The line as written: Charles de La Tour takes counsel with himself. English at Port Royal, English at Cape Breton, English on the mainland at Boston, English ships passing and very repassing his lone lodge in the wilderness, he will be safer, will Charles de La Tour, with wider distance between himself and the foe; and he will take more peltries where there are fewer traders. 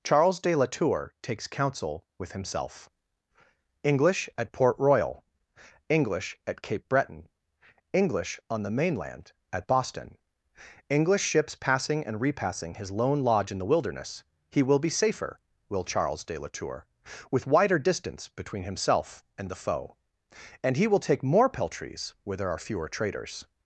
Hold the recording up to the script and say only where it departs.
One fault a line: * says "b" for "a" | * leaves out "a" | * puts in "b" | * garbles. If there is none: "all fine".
* leaves out "very"